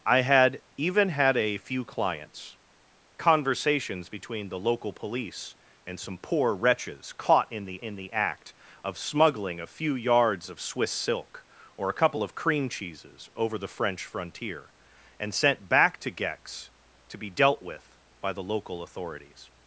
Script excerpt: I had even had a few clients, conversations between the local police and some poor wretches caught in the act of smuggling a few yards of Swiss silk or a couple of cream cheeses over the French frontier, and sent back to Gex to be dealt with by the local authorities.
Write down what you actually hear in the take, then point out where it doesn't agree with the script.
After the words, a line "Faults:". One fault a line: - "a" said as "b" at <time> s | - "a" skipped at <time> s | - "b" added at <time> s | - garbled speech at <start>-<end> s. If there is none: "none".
I had even had a few clients, conversations between the local police and some poor wretches caught in the in the act of smuggling a few yards of Swiss silk or a couple of cream cheeses over the French frontier, and sent back to Gex to be dealt with by the local authorities.
Faults:
- "in the" added at 7.8 s